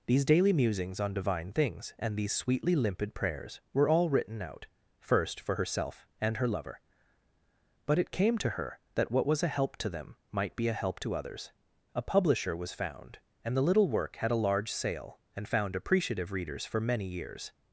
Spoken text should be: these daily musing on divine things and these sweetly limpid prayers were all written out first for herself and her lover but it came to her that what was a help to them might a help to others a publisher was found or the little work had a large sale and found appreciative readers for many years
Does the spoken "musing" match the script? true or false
false